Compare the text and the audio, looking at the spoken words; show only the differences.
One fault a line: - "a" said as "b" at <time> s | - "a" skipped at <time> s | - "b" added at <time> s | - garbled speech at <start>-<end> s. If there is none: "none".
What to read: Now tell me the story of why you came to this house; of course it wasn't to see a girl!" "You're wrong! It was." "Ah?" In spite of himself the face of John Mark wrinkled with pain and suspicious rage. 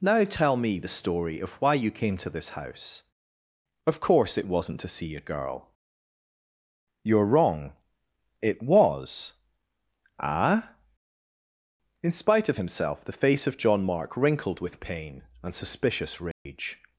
none